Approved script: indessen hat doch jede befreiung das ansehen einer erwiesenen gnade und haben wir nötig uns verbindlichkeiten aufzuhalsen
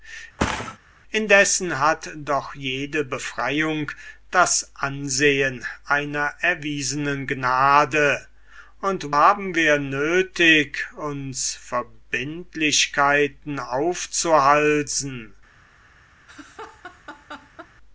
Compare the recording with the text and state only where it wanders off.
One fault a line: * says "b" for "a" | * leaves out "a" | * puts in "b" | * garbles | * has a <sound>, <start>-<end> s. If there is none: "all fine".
* has a thud, 0.4-0.8 s
* has a laugh, 16.3-17.7 s